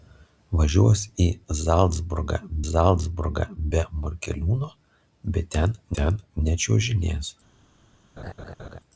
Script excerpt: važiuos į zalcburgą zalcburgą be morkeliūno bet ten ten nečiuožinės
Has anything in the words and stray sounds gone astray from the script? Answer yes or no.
yes